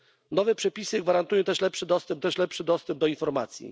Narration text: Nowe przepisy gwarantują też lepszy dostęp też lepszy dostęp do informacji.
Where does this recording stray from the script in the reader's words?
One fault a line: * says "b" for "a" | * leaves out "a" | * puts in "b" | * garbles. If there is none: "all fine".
all fine